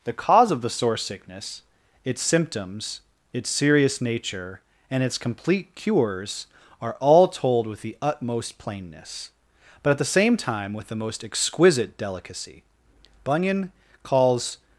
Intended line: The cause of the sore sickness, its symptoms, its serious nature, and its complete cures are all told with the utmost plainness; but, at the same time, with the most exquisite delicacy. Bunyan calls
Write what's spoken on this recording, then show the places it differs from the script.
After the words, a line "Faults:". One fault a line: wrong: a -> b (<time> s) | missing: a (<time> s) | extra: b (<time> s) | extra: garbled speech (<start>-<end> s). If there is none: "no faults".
The cause of the sore sickness, its symptoms, its serious nature, and its complete cures are all told with the utmost plainness; but, at the same time, with the most exquisite delicacy. Bunyan calls
Faults:
no faults